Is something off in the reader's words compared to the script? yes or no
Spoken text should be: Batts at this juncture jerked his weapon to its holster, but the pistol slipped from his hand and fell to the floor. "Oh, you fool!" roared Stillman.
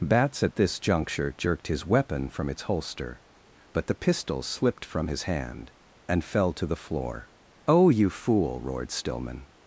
yes